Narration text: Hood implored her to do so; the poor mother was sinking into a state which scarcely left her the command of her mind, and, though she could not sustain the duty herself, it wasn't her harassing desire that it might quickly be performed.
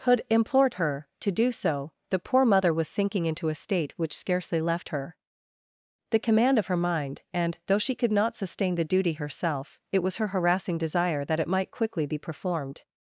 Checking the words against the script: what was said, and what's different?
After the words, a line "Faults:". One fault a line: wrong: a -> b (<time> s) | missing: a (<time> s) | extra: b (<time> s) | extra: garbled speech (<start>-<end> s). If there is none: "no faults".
Hood implored her to do so; the poor mother was sinking into a state which scarcely left her the command of her mind, and, though she could not sustain the duty herself, it was her harassing desire that it might quickly be performed.
Faults:
wrong: wasn't -> was (10.0 s)